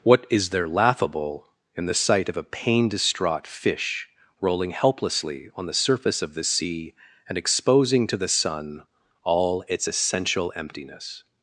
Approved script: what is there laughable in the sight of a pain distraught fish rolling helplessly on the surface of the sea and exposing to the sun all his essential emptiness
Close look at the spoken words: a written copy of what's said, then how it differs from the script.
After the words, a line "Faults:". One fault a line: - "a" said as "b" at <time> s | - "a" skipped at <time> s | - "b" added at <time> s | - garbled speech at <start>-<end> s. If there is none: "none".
what is there laughable in the sight of a pain distraught fish rolling helplessly on the surface of the sea and exposing to the sun all its essential emptiness
Faults:
- "his" said as "its" at 9.7 s